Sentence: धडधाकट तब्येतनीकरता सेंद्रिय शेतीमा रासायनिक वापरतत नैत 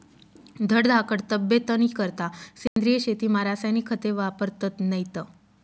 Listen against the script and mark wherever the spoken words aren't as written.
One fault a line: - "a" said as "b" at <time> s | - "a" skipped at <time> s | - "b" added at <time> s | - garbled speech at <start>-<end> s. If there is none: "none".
- "खते" added at 3.9 s